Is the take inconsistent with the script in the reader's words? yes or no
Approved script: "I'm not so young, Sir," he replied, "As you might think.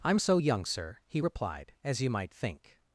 yes